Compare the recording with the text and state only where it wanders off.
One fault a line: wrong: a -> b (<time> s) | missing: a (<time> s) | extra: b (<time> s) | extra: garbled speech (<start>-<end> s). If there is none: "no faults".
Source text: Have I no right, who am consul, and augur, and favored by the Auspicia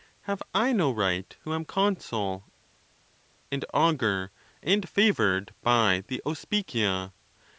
no faults